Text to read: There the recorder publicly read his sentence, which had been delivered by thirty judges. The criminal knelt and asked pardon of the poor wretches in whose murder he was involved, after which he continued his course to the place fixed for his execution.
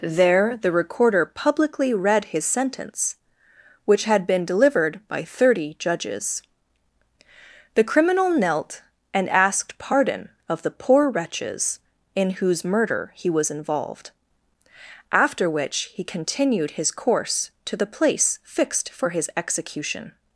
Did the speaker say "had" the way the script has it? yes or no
yes